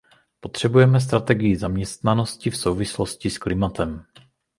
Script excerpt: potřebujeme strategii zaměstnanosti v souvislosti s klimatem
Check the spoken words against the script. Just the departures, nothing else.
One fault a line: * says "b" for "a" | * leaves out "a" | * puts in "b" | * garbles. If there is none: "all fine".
all fine